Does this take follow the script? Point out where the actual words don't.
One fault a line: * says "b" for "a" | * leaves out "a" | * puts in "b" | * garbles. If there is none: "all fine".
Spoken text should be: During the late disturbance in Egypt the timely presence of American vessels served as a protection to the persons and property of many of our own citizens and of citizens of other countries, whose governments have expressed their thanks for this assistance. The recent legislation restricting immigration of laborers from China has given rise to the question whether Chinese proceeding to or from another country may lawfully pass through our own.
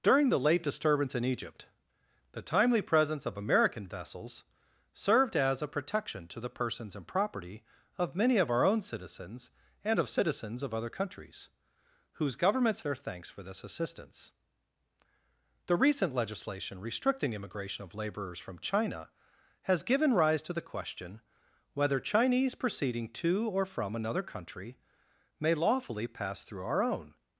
* leaves out "have expressed"